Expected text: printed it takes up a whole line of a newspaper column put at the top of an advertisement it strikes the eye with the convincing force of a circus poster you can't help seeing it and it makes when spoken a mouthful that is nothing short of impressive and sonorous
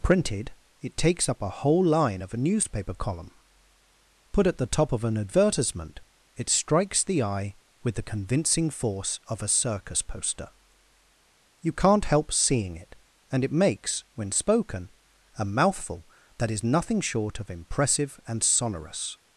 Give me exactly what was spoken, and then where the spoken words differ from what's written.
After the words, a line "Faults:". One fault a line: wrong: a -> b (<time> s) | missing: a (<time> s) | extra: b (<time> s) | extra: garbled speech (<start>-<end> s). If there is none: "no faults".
printed it takes up a whole line of a newspaper column put at the top of an advertisement it strikes the eye with the convincing force of a circus poster you can't help seeing it and it makes when spoken a mouthful that is nothing short of impressive and sonorous
Faults:
no faults